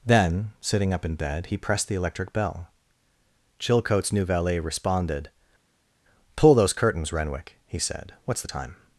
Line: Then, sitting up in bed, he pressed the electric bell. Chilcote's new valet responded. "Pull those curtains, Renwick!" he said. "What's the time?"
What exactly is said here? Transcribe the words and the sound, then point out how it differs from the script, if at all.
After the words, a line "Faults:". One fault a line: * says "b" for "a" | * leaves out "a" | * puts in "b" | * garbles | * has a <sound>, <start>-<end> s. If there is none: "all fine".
Then, sitting up in bed, he pressed the electric bell. Chilcote's new valet responded. "Pull those curtains, Renwick!" he said. "What's the time?"
Faults:
all fine